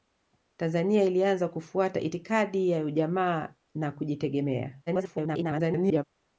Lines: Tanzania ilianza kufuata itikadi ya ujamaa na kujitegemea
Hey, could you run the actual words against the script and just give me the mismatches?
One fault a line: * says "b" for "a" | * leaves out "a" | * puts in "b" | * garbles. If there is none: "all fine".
* garbles